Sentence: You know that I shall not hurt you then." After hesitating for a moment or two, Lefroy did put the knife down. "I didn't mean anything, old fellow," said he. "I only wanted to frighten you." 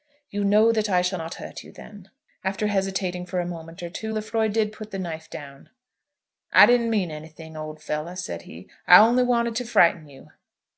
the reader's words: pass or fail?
pass